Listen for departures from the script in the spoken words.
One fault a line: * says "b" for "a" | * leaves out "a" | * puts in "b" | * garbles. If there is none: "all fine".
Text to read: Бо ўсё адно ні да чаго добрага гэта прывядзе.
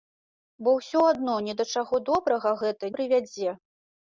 all fine